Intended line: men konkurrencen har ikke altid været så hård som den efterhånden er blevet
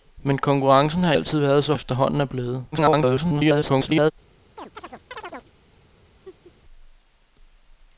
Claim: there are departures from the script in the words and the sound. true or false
true